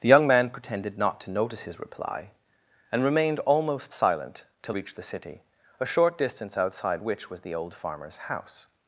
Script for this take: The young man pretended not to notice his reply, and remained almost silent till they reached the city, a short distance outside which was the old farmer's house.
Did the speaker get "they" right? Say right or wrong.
wrong